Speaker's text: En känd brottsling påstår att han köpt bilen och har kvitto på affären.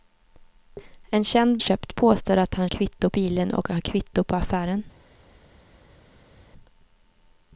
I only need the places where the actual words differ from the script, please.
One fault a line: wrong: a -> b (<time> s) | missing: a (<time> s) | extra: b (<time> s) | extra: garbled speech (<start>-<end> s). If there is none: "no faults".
wrong: brottsling -> köpt (1.6 s)
wrong: köpt -> kvitto (2.7 s)